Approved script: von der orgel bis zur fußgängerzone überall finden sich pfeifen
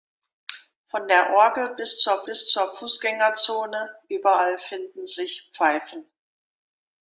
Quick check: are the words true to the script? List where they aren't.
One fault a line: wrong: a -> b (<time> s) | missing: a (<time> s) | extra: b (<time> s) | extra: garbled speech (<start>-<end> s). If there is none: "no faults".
extra: bis zur (2.2 s)